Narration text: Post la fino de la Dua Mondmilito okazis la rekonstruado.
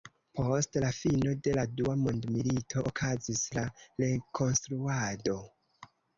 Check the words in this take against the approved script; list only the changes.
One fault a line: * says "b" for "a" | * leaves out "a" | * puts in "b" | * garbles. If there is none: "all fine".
all fine